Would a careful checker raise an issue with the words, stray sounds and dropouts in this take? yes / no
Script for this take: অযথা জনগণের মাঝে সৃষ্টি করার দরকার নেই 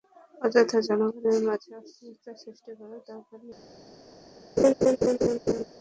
yes